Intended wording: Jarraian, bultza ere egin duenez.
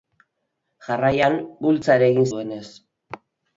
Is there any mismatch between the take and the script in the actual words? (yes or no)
no